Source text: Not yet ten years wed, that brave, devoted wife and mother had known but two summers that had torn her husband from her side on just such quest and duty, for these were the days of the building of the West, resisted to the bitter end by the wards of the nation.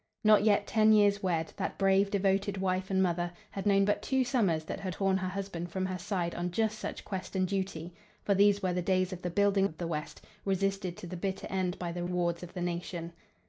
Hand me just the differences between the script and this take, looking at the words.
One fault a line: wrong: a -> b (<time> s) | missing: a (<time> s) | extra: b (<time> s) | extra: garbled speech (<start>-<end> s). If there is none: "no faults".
no faults